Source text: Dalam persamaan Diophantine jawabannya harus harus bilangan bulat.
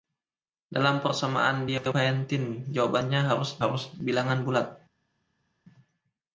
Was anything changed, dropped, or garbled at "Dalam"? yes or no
no